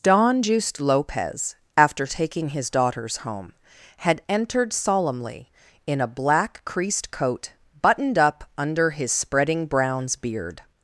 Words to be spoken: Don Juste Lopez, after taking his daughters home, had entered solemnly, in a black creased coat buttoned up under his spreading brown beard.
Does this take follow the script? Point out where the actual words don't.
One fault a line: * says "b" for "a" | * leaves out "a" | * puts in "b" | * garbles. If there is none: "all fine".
* says "browns" for "brown"